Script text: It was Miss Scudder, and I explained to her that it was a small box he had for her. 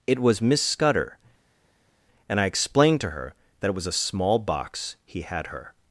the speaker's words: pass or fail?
fail